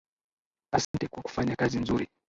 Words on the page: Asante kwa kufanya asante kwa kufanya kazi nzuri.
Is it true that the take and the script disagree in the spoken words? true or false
true